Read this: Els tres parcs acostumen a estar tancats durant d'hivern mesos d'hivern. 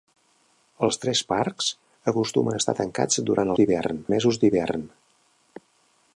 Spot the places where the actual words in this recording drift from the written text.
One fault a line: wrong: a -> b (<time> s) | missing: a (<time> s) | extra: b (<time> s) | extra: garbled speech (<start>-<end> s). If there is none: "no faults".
no faults